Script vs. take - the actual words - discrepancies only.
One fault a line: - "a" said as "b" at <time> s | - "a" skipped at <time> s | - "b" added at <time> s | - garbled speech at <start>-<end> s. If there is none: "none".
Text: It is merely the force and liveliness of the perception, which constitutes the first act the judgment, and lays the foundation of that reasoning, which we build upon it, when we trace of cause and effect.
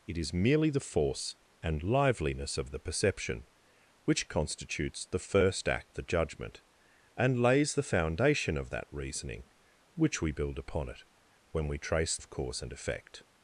none